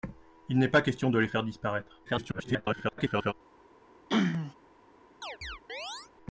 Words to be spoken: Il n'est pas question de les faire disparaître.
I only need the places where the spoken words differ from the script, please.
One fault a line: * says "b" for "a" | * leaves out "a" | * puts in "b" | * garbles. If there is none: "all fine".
* garbles